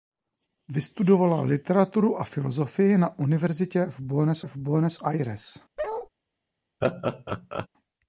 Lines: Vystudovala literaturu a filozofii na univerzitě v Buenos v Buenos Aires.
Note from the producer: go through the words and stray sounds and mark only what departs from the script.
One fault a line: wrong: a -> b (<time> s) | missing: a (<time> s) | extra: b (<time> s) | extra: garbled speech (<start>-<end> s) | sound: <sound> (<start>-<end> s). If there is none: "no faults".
sound: bark (5.8-6.1 s)
sound: laugh (6.8-7.7 s)